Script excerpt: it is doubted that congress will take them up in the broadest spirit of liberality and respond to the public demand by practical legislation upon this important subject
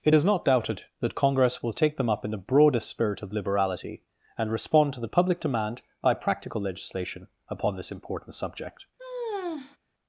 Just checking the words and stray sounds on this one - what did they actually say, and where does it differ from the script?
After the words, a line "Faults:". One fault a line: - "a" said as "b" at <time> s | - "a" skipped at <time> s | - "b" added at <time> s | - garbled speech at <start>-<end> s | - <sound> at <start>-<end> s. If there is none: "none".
it is not doubted that congress will take them up in the broadest spirit of liberality and respond to the public demand by practical legislation upon this important subject
Faults:
- "not" added at 0.2 s
- sigh at 9.0-9.8 s